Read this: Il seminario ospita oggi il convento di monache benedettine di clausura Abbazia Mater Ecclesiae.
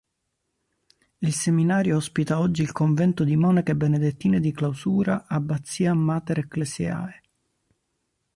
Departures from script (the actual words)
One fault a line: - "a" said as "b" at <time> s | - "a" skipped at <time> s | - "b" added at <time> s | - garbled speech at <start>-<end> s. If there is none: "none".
none